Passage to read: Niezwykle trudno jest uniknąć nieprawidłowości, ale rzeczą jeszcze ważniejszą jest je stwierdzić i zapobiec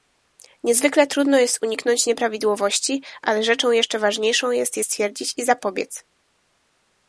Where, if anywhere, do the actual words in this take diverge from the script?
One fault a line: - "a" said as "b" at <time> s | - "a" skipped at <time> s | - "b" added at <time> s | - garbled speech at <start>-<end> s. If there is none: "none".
none